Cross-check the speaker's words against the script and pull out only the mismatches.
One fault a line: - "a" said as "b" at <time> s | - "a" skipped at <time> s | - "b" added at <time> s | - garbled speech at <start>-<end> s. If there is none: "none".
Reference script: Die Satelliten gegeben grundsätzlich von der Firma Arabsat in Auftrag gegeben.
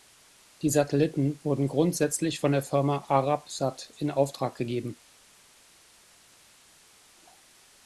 - "gegeben" said as "wurden" at 1.4 s